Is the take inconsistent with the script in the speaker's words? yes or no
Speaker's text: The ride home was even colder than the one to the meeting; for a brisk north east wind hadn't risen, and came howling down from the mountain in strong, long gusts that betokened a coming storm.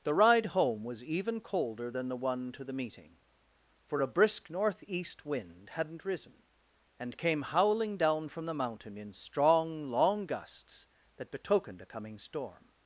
no